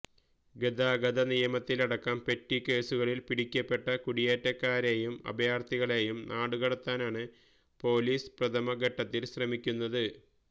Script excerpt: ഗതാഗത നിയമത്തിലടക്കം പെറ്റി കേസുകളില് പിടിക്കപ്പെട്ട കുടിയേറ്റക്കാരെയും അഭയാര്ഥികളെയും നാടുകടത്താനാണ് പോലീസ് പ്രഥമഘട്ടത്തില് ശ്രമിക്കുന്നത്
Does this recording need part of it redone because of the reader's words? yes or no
no